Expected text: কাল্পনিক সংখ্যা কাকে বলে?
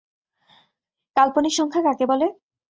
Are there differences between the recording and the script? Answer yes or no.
no